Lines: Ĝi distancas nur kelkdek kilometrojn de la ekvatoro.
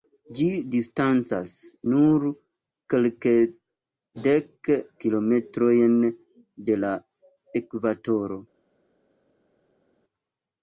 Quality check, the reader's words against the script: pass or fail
pass